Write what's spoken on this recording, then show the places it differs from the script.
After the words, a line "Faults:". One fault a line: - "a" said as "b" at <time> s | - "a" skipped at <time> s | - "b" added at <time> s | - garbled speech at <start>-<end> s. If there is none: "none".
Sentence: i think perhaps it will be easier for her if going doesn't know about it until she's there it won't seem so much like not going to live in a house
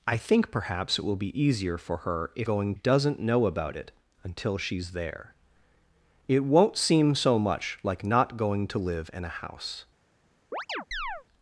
i think perhaps it will be easier for her if going doesn't know about it until she's there it won't seem so much like not going to live in a house
Faults:
none